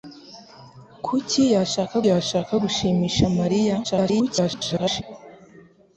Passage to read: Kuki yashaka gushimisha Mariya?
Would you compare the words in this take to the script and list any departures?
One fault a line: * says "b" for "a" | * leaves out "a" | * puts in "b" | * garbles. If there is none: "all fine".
* puts in "yashaka"
* garbles